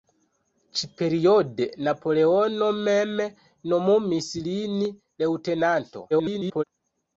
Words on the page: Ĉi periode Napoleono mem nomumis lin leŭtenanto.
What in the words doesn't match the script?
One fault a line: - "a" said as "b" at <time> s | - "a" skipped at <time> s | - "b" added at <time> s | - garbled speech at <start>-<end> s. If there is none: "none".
- garbled speech at 6.1-6.6 s